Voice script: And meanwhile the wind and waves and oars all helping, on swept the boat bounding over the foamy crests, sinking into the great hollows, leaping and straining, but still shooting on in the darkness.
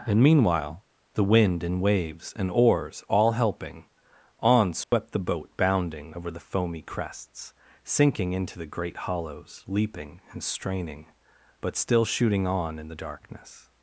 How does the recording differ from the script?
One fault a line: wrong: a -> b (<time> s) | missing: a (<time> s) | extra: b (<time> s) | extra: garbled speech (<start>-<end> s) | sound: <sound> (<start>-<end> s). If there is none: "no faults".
sound: dropout (4.8-4.9 s)